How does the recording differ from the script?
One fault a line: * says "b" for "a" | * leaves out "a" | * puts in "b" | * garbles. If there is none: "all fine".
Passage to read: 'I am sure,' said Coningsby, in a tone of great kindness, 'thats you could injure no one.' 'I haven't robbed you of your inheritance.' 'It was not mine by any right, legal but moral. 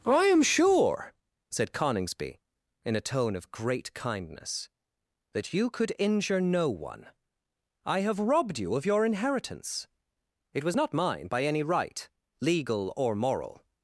* says "that" for "thats"
* says "have" for "haven't"
* says "or" for "but"